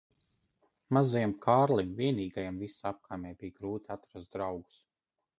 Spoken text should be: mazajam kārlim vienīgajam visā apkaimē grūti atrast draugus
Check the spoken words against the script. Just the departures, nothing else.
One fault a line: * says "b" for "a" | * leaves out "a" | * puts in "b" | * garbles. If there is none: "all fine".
* puts in "bija"